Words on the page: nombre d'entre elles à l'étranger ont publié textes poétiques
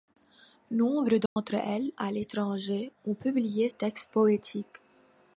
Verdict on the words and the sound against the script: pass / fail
fail